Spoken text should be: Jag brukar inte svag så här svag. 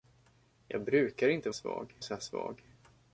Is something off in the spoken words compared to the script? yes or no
no